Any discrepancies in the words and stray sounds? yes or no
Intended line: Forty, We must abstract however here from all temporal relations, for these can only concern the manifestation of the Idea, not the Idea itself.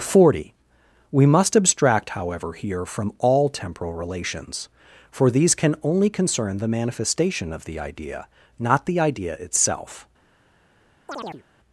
yes